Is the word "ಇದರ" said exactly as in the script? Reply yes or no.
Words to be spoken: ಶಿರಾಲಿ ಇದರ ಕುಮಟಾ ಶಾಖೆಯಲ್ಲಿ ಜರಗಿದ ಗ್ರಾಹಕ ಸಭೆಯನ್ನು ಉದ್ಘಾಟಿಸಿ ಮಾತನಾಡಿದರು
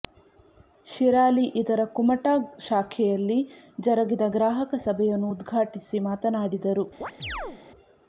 yes